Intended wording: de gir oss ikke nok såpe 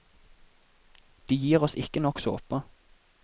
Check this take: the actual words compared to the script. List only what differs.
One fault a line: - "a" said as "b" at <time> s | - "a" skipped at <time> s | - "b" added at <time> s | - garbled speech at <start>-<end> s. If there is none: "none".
none